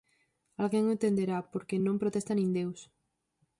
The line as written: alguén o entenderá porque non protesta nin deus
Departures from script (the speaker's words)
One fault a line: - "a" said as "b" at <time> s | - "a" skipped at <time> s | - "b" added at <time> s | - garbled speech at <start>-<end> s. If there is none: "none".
none